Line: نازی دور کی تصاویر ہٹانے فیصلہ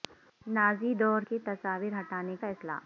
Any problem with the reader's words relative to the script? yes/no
no